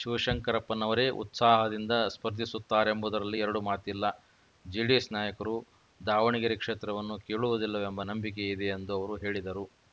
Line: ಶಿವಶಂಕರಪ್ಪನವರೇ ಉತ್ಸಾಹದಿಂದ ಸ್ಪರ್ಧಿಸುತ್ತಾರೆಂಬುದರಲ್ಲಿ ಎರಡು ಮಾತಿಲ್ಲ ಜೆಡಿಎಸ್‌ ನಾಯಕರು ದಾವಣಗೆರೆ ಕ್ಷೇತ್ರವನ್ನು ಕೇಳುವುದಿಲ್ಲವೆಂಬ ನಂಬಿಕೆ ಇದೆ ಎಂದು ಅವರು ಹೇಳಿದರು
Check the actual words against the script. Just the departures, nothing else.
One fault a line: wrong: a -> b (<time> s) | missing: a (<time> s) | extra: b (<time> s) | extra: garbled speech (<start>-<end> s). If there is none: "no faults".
no faults